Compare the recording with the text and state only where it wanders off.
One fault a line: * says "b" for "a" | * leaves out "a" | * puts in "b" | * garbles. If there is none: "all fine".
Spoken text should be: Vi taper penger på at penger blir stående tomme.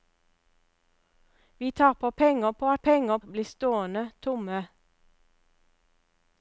all fine